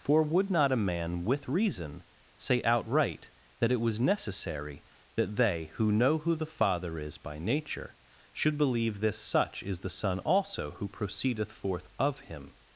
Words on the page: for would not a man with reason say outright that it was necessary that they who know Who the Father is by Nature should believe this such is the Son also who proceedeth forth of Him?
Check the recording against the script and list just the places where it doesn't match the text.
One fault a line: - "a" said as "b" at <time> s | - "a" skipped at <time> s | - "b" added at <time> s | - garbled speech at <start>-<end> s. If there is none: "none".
none